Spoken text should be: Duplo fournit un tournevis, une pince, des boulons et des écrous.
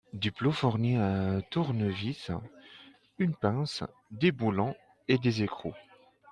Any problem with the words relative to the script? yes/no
no